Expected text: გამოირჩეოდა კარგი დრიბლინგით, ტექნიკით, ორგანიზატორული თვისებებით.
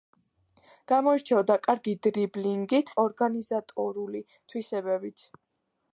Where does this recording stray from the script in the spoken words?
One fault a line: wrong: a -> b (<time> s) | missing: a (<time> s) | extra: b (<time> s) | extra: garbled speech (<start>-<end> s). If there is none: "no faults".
missing: ტექნიკით (3.0 s)